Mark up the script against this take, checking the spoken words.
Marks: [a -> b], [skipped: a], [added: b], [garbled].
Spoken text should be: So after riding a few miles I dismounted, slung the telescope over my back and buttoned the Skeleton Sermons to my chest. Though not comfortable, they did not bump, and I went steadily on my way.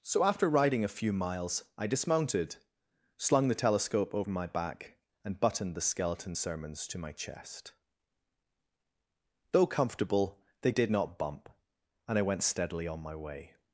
So after riding a few miles I dismounted, slung the telescope over my back and buttoned the Skeleton Sermons to my chest. Though [skipped: not] comfortable, they did not bump, and I went steadily on my way.